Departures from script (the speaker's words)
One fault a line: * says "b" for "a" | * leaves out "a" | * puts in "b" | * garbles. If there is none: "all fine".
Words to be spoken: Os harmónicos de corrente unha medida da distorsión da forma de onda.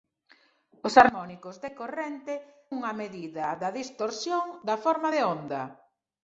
all fine